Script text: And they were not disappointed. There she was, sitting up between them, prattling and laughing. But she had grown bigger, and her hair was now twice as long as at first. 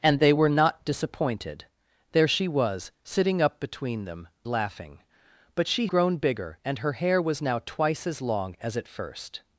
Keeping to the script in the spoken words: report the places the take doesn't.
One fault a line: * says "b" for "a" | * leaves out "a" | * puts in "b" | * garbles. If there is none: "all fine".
* leaves out "prattling and"
* leaves out "had"